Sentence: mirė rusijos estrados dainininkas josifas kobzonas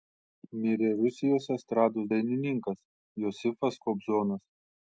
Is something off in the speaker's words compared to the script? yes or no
no